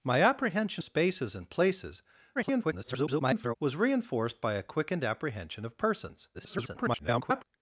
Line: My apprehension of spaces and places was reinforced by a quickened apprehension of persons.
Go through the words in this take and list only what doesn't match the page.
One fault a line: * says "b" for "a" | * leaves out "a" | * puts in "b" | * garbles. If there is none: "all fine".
* leaves out "of"
* garbles
* garbles